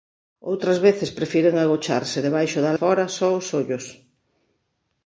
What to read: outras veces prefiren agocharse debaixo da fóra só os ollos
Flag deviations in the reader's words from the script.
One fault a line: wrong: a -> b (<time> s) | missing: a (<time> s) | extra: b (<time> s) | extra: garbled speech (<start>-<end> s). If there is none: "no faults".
no faults